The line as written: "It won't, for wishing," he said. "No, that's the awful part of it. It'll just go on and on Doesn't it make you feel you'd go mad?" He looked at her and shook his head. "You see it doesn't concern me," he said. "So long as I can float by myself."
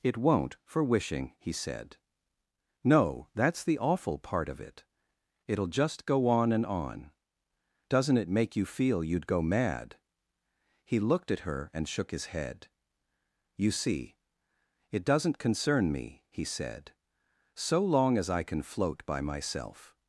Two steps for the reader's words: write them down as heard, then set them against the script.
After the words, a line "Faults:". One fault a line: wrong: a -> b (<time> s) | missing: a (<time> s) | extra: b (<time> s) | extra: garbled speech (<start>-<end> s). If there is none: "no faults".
"It won't, for wishing," he said. "No, that's the awful part of it. It'll just go on and on Doesn't it make you feel you'd go mad?" He looked at her and shook his head. "You see it doesn't concern me," he said. "So long as I can float by myself."
Faults:
no faults